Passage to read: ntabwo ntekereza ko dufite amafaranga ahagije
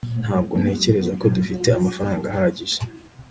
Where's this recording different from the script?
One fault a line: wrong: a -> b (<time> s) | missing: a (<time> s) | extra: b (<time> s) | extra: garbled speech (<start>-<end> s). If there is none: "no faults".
no faults